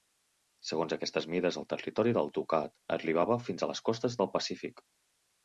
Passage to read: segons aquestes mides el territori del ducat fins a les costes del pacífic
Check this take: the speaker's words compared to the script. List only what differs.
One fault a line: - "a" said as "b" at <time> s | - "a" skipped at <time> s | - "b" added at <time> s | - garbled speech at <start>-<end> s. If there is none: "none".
- "arribava" added at 3.0 s